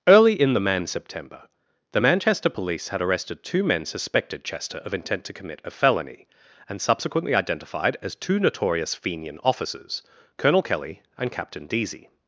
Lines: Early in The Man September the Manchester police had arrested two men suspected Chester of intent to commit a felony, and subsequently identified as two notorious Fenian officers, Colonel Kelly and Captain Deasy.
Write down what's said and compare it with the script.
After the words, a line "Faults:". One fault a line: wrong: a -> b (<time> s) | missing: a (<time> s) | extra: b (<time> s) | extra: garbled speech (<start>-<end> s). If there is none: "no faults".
Early in The Man September the Manchester police had arrested two men suspected Chester of intent to commit a felony, and subsequently identified as two notorious Fenian officers, Colonel Kelly and Captain Deasy.
Faults:
no faults